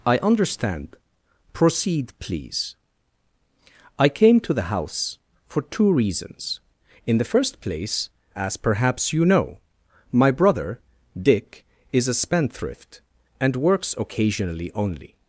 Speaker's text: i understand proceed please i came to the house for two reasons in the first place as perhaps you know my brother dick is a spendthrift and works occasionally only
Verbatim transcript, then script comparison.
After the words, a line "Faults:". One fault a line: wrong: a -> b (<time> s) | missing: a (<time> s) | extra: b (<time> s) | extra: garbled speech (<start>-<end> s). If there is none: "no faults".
i understand proceed please i came to the house for two reasons in the first place as perhaps you know my brother dick is a spendthrift and works occasionally only
Faults:
no faults